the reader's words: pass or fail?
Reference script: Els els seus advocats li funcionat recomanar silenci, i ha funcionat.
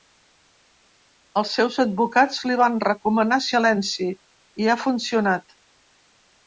fail